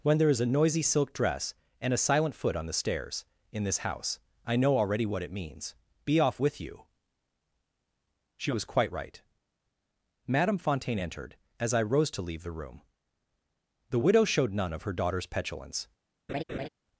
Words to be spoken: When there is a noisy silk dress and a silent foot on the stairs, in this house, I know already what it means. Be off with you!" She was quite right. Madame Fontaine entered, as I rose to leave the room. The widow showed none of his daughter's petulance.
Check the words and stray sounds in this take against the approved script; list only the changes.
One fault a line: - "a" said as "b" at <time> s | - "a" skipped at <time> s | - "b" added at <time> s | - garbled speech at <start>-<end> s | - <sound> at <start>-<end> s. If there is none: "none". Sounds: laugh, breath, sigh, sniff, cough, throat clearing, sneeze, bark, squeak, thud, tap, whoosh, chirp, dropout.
- "his" said as "her" at 14.8 s
- laugh at 16.3-16.7 s